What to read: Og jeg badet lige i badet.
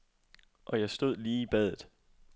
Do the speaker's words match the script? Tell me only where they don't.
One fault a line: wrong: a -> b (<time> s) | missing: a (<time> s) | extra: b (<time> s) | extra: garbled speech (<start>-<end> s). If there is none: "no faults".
wrong: badet -> stod (0.9 s)